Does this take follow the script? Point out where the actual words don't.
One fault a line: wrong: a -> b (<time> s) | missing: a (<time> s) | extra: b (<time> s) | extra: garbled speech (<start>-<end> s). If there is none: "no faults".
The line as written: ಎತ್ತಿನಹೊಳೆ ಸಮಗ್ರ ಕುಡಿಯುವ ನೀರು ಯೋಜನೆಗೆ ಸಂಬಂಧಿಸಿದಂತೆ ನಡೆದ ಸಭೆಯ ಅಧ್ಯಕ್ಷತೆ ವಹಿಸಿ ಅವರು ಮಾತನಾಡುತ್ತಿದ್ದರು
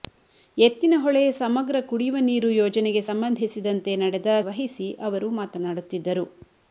missing: ಸಭೆಯ ಅಧ್ಯಕ್ಷತೆ (4.3 s)